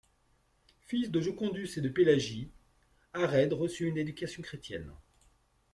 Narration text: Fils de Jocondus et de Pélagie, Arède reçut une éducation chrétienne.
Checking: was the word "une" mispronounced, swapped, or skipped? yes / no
no